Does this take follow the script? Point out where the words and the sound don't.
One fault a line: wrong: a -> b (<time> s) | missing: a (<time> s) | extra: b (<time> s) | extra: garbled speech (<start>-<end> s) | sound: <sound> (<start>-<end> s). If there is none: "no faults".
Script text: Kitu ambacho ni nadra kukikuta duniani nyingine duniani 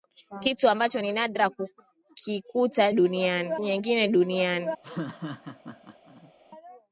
sound: laugh (4.8-6.3 s)